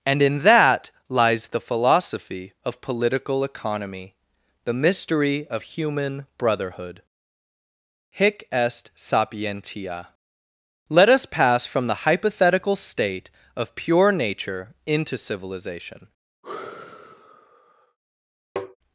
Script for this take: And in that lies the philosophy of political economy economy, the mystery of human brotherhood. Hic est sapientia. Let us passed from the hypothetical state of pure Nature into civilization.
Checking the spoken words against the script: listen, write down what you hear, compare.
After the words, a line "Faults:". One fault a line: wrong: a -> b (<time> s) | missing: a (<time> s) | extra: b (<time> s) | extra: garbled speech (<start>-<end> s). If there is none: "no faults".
And in that lies the philosophy of political economy, the mystery of human brotherhood. Hic est sapientia. Let us pass from the hypothetical state of pure Nature into civilization.
Faults:
missing: economy (4.2 s)
wrong: passed -> pass (11.2 s)